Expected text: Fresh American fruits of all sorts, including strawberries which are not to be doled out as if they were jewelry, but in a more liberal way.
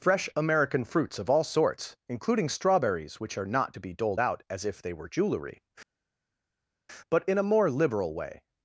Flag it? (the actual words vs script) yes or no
no